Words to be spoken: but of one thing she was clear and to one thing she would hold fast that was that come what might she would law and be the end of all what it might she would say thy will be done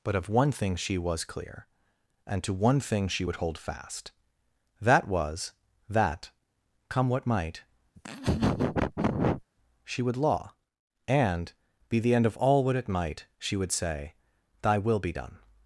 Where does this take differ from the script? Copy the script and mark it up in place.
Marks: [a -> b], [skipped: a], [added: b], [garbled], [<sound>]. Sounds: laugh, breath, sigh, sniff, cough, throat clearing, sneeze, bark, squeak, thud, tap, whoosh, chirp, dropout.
but of one thing she was clear and to one thing she would hold fast that was that come what might [laugh] she would law and be the end of all what it might she would say thy will be done